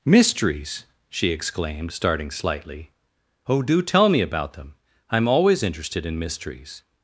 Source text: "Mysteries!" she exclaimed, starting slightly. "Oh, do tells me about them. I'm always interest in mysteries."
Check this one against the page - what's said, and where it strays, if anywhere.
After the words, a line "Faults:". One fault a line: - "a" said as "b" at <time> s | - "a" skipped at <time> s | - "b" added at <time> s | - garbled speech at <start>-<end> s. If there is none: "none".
"Mysteries!" she exclaimed, starting slightly. "Oh, do tell me about them. I'm always interested in mysteries."
Faults:
- "tells" said as "tell" at 3.8 s
- "interest" said as "interested" at 5.6 s